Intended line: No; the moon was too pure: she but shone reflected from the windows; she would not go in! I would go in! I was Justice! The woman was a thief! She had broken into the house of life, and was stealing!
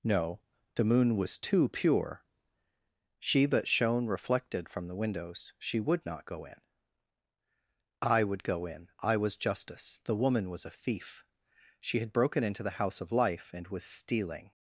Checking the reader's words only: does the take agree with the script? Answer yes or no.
yes